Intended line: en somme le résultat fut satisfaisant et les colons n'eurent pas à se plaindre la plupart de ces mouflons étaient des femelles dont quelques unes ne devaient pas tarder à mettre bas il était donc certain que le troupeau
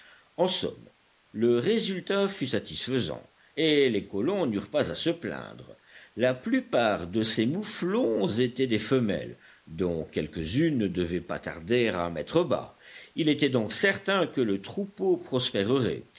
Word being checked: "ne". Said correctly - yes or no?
yes